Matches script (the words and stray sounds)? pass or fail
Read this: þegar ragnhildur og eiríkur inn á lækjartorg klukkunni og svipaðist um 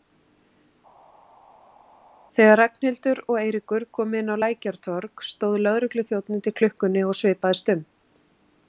fail